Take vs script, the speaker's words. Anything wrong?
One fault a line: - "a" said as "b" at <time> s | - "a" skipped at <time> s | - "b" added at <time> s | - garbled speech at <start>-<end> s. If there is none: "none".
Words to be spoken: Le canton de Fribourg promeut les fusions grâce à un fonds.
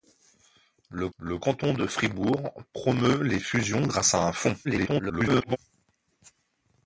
- "le" added at 1.2 s
- garbled speech at 4.6-5.6 s